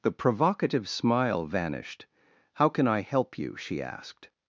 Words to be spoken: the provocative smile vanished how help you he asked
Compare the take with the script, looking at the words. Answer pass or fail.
fail